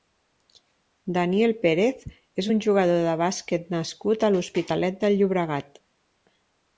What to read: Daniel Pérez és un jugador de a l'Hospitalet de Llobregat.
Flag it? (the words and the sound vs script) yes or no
yes